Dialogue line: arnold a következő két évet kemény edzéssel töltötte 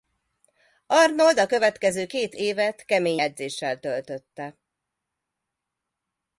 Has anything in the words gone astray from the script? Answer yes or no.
no